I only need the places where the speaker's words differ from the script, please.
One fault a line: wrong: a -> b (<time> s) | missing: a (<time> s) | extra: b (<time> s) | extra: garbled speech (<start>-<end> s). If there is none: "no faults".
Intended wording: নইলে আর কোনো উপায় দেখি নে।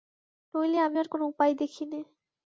extra: আমি (0.8 s)